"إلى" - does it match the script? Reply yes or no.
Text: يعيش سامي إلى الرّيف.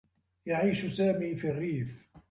no